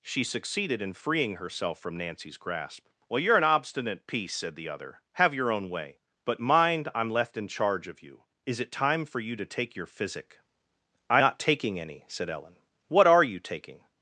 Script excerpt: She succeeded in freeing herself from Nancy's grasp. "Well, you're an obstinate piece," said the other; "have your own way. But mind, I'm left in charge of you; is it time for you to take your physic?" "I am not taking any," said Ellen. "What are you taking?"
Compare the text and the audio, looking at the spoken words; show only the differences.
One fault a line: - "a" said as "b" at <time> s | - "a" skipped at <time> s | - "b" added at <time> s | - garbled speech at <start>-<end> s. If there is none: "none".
- "am" skipped at 11.2 s